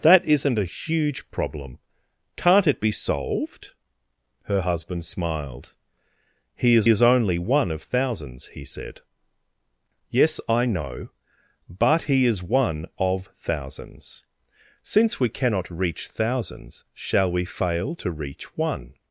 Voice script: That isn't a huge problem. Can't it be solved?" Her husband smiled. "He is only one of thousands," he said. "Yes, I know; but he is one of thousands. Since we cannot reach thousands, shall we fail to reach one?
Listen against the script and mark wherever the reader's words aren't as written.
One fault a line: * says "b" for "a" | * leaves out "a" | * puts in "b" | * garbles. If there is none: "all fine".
* puts in "is"